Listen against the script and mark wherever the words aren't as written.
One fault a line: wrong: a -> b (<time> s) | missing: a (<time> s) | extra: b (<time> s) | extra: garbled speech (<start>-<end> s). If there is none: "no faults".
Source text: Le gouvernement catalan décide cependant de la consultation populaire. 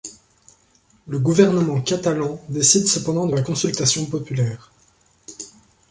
no faults